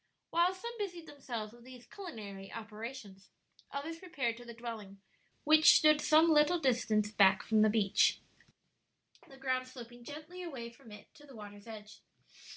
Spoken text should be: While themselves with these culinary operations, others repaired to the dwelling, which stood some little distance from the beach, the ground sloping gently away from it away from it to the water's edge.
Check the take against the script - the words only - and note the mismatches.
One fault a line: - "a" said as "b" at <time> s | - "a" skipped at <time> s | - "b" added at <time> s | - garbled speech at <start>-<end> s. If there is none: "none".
- "some busied" added at 0.6 s
- "back" added at 7.1 s
- "away from it" skipped at 11.1 s